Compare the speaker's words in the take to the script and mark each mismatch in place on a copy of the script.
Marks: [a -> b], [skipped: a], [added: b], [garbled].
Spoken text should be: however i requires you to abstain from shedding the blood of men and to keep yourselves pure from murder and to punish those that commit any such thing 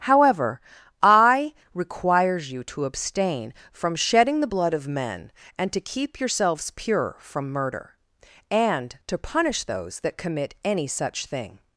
however i requires you to abstain from shedding the blood of men and to keep yourselves pure from murder and to punish those that commit any such thing